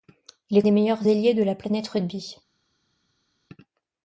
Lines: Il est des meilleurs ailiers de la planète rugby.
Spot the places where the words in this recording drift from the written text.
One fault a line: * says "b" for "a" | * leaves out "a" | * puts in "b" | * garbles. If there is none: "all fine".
all fine